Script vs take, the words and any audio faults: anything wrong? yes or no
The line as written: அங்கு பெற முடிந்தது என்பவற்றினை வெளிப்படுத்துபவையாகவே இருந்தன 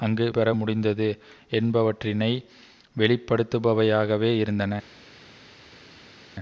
no